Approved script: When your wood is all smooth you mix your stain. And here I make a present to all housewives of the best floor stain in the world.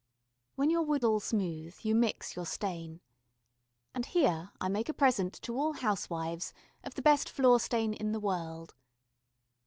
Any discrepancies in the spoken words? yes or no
yes